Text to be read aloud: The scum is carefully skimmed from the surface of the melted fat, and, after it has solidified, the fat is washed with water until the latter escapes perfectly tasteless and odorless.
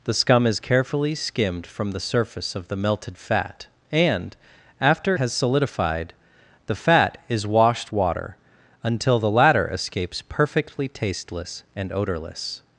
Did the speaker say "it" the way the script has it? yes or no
no